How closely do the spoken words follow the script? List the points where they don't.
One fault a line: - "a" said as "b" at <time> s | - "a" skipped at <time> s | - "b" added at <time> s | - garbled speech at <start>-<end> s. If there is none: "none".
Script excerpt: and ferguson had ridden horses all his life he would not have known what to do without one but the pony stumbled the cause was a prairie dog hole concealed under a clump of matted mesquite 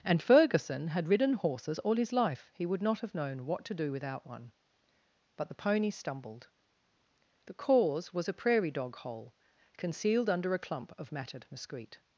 none